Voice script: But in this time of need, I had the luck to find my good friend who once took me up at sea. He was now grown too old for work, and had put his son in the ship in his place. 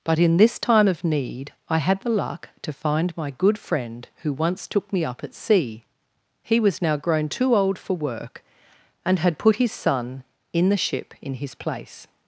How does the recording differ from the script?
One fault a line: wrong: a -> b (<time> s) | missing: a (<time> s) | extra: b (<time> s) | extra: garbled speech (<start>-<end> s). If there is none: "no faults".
no faults